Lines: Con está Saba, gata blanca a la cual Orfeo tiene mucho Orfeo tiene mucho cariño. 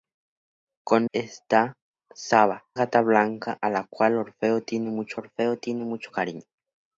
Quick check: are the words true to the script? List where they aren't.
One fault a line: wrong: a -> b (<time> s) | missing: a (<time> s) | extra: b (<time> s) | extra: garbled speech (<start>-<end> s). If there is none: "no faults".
no faults